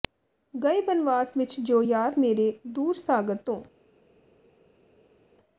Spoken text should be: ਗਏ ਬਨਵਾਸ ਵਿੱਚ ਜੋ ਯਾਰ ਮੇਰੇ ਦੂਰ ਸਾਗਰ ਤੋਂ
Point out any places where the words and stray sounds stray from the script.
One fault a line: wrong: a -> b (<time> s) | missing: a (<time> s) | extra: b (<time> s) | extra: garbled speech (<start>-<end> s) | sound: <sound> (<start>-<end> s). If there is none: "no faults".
no faults